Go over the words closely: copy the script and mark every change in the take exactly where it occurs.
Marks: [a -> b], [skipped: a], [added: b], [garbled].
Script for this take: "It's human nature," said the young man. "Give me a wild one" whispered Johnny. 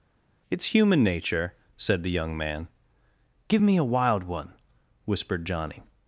"It's human nature," said the young man. "Give me a wild one" whispered Johnny.